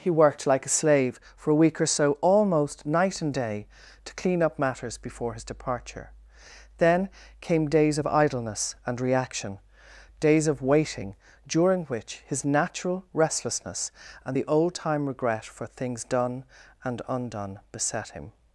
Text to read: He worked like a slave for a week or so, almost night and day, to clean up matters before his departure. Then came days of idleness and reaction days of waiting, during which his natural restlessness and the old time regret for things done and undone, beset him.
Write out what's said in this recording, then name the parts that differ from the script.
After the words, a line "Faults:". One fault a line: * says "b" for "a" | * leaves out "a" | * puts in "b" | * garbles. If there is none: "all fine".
He worked like a slave for a week or so, almost night and day, to clean up matters before his departure. Then came days of idleness and reaction days of waiting, during which his natural restlessness and the old time regret for things done and undone, beset him.
Faults:
all fine